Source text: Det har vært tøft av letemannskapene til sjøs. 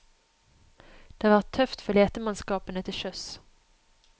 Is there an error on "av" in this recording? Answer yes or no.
yes